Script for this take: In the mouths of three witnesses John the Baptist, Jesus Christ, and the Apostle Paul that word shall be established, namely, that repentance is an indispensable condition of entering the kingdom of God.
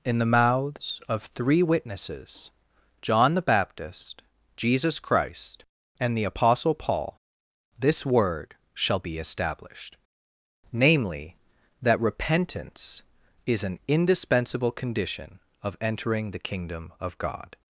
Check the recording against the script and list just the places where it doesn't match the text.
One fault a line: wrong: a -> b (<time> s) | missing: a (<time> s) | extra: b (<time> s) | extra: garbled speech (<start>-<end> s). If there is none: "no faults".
wrong: that -> this (7.8 s)